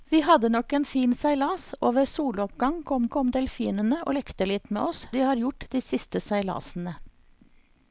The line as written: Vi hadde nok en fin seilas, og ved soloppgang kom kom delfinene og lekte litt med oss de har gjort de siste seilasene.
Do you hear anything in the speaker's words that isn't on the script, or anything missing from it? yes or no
no